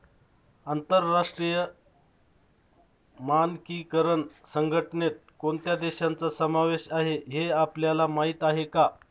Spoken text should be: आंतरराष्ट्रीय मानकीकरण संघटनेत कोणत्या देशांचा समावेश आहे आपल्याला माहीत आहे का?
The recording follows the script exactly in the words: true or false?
false